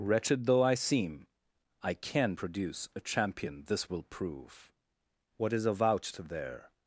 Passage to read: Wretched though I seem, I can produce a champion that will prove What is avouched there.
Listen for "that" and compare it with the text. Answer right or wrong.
wrong